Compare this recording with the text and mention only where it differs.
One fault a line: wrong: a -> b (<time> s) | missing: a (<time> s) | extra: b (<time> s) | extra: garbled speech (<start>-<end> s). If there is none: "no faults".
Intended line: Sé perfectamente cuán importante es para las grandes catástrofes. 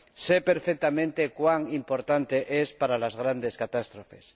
no faults